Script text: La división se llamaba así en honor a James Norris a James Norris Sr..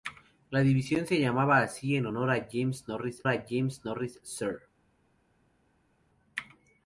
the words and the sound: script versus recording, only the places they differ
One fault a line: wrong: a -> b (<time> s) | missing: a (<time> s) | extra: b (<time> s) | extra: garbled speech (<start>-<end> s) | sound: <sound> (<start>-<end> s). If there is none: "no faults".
no faults